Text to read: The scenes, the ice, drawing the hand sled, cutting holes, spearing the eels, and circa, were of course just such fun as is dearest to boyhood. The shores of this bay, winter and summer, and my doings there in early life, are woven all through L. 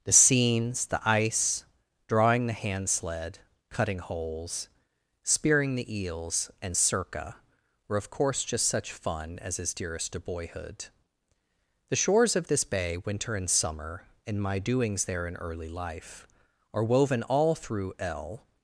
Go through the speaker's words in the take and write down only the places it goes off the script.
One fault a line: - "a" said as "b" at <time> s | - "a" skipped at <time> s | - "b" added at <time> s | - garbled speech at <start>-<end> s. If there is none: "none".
none